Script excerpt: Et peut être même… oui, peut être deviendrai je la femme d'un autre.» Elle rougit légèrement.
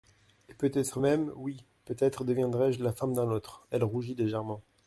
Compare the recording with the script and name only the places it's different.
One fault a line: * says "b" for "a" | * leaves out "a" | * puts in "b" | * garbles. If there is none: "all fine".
all fine